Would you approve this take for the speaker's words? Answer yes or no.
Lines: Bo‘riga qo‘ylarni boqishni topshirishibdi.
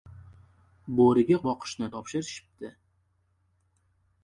no